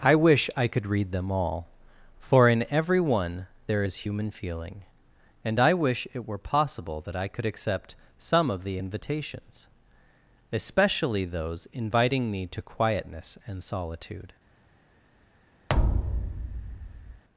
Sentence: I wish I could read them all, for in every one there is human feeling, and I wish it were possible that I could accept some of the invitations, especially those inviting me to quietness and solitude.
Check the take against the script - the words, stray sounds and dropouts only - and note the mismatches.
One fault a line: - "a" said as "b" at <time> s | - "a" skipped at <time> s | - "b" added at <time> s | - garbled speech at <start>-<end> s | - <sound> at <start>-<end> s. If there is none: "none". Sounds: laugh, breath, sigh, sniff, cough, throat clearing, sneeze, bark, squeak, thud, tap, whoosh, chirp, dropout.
- thud at 15.7-17.2 s